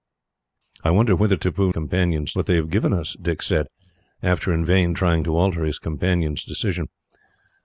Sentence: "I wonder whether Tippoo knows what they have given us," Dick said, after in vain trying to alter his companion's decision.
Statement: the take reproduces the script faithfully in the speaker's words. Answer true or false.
false